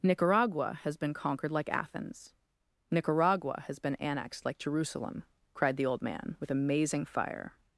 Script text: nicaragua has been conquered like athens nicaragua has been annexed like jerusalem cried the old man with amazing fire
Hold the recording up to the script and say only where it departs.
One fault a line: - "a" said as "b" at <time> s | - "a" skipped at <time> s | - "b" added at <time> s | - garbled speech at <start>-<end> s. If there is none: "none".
none